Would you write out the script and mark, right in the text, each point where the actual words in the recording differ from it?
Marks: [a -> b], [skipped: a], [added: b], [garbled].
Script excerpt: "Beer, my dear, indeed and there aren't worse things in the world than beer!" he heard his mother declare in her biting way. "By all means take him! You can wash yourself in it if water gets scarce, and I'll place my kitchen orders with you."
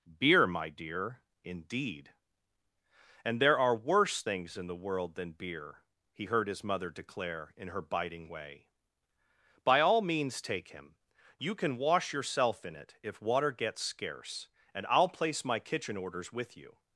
"Beer, my dear, indeed and there [aren't -> are] worse things in the world than beer!" he heard his mother declare in her biting way. "By all means take him! You can wash yourself in it if water gets scarce, and I'll place my kitchen orders with you."